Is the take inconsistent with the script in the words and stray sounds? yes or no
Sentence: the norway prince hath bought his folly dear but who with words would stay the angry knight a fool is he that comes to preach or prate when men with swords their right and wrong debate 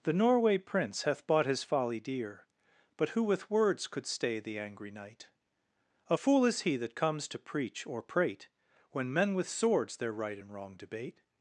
yes